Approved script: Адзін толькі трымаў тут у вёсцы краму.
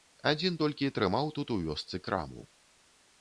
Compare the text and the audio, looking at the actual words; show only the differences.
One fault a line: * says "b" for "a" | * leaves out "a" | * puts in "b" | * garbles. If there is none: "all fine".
all fine